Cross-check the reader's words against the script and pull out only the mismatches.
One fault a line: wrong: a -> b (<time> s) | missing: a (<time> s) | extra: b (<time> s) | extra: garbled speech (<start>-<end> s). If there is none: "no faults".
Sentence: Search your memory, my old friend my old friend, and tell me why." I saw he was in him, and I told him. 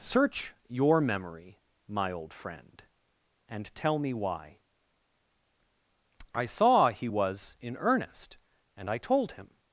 missing: my old friend (2.8 s)
wrong: him -> earnest (7.8 s)